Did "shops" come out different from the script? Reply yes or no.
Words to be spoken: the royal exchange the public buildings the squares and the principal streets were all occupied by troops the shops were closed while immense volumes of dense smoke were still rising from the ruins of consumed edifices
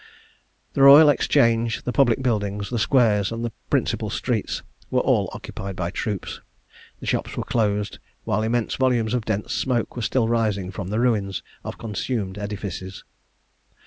no